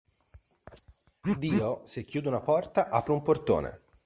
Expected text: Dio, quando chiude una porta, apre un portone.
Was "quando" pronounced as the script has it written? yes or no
no